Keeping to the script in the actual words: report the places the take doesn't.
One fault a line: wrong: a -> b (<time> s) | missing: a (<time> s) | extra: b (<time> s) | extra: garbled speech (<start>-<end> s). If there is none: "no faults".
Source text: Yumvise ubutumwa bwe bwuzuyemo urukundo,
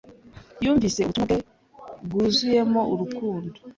no faults